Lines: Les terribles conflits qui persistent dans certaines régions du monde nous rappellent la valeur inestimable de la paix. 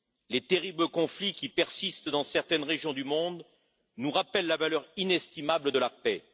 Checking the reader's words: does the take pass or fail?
pass